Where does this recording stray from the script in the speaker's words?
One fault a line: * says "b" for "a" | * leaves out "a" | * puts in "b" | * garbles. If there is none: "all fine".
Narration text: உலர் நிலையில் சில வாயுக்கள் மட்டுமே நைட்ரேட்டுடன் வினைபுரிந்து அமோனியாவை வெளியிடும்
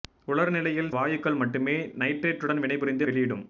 * leaves out "சில"
* leaves out "அமோனியாவை"